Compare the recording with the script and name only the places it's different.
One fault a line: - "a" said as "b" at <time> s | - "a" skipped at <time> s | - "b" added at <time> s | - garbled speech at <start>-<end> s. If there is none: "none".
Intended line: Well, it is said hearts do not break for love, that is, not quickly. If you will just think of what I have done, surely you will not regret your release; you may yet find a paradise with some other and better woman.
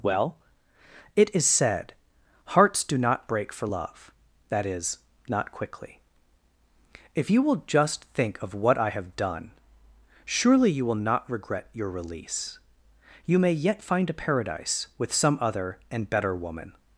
none